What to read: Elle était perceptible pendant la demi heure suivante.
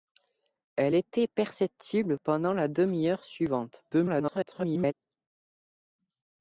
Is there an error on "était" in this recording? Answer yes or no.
no